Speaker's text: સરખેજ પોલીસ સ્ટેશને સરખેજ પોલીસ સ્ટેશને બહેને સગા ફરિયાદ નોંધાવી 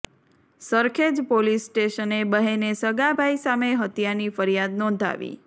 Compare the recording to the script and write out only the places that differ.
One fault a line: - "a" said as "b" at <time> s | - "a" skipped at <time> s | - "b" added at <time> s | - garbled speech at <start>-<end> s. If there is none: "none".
- "સરખેજ પોલીસ સ્ટેશને બહેને સગા" said as "બહેને સગા ભાઈ સામે હત્યાની" at 2.3 s